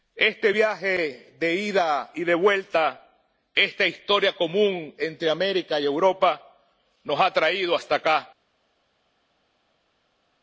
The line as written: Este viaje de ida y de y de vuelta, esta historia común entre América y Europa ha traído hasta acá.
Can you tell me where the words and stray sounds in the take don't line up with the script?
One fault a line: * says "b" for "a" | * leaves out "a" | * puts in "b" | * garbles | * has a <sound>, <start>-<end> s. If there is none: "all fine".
* leaves out "y de"
* puts in "nos"